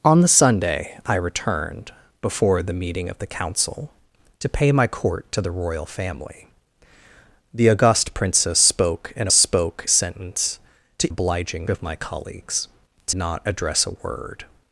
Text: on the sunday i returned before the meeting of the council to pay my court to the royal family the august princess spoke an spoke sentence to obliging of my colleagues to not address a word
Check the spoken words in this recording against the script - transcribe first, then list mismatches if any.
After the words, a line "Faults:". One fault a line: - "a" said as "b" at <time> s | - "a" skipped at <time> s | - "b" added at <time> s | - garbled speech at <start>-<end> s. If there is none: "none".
on the sunday i returned before the meeting of the council to pay my court to the royal family the august princess spoke an spoke sentence to obliging of my colleagues to not address a word
Faults:
none